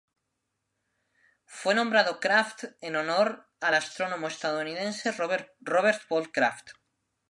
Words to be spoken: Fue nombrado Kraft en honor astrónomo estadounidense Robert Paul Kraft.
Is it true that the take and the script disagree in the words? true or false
true